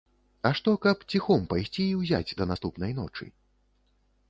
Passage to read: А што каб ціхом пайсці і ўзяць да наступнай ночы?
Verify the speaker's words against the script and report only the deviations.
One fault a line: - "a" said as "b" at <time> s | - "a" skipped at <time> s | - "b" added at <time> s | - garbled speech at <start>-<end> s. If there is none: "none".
none